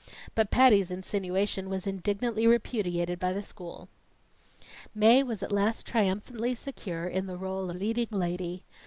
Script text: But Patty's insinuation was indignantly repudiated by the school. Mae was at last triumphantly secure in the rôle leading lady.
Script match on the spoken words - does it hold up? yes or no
yes